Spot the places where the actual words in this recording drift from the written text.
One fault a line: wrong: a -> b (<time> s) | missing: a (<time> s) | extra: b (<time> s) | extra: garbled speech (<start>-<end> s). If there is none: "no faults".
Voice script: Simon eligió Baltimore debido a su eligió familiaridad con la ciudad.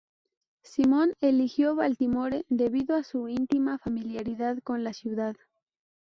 wrong: eligió -> íntima (3.3 s)